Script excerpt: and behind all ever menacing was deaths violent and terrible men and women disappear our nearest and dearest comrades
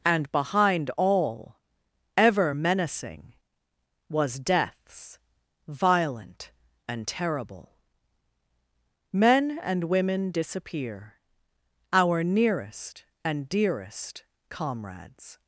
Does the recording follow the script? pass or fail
pass